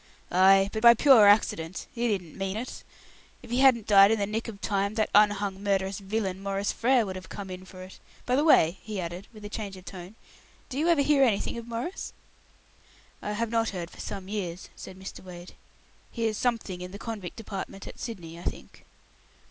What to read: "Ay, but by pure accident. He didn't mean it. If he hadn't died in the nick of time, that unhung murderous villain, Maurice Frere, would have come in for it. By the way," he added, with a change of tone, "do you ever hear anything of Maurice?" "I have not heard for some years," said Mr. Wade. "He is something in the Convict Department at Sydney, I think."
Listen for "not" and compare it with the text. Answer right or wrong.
right